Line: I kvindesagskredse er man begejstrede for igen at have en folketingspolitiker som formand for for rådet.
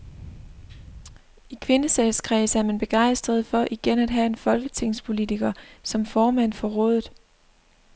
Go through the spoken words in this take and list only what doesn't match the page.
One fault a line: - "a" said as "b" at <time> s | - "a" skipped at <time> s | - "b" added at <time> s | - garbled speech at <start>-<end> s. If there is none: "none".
- "for" skipped at 6.7 s